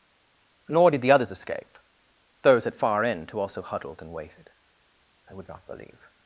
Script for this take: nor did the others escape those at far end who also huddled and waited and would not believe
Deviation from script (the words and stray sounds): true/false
false